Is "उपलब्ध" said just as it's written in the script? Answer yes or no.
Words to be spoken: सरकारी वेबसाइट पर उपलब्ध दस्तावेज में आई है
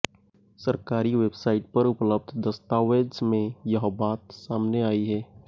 yes